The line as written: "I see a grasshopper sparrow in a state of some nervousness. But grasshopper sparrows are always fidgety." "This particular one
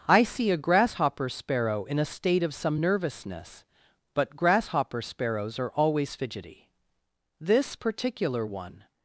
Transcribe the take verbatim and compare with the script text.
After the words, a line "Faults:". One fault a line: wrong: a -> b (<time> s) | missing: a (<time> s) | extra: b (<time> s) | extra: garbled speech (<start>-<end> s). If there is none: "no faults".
"I see a grasshopper sparrow in a state of some nervousness. But grasshopper sparrows are always fidgety." "This particular one
Faults:
no faults